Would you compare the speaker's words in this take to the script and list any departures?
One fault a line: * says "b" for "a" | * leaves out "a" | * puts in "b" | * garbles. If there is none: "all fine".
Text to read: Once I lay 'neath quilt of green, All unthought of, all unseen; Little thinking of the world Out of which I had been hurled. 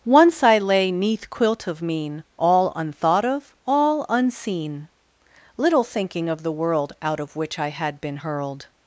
* says "mean" for "green"